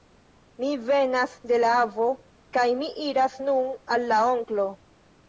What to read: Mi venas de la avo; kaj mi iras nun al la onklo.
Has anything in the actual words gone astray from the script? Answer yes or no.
no